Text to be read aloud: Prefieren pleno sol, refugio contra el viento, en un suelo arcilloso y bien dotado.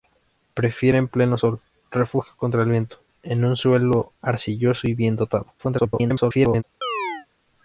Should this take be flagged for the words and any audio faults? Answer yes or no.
yes